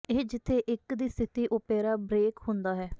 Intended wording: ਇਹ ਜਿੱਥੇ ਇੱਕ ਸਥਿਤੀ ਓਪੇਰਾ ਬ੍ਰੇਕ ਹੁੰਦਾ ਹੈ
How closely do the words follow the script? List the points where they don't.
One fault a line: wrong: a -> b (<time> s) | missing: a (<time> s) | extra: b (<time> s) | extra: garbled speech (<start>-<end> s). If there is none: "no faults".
extra: ਦੀ (0.9 s)